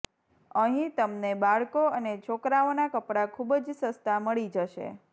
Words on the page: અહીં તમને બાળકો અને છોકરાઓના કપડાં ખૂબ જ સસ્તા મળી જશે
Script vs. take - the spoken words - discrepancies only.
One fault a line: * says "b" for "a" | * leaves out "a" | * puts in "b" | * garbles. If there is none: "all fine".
all fine